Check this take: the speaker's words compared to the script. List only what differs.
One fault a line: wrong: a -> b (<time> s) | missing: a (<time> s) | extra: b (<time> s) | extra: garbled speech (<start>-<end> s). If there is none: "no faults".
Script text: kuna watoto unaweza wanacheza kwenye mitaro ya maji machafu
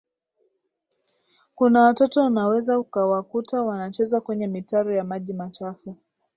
extra: ukawakuta (2.8 s)